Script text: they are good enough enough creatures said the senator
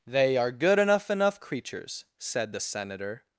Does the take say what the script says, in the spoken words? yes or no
yes